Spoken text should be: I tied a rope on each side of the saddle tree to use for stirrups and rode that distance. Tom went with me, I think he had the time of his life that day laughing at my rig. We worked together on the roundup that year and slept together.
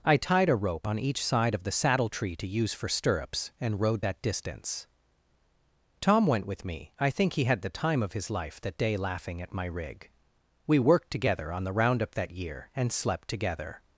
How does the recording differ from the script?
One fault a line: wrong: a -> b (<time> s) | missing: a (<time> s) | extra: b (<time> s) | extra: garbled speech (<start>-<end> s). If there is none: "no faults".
no faults